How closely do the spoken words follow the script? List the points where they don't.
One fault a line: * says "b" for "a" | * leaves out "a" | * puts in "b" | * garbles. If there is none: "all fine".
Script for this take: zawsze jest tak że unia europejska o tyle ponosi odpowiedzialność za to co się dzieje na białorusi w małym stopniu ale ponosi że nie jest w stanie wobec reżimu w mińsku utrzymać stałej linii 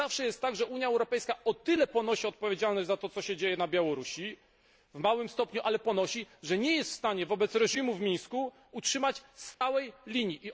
all fine